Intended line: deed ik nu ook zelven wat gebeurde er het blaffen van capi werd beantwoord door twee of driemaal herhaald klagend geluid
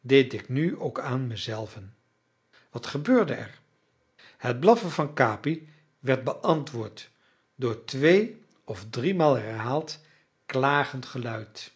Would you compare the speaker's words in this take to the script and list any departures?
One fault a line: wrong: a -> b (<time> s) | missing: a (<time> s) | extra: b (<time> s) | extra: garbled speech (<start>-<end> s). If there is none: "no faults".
extra: aan me (1.0 s)